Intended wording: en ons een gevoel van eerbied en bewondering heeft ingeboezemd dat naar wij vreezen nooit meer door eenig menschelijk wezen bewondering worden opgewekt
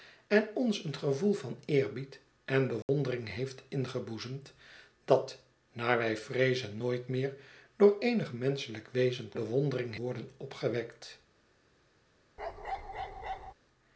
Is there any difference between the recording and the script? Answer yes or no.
no